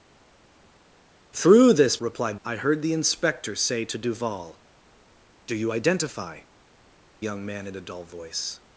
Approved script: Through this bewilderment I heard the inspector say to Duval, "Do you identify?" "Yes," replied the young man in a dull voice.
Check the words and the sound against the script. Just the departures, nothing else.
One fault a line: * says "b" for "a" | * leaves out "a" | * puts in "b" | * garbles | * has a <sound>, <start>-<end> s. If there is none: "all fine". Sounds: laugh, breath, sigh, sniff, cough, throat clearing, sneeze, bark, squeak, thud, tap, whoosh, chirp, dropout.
* says "replied" for "bewilderment"
* leaves out "Yes replied the"